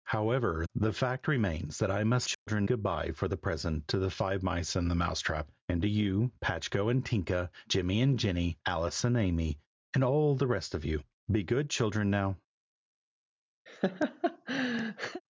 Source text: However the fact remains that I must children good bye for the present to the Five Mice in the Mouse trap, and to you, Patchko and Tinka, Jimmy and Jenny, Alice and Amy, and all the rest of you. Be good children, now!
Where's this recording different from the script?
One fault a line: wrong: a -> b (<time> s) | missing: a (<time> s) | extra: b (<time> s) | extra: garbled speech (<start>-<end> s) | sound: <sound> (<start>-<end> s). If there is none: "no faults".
sound: dropout (2.3-2.5 s)
sound: laugh (13.7-15.2 s)